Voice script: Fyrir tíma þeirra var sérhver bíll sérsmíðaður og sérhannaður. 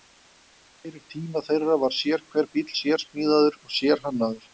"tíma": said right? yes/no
yes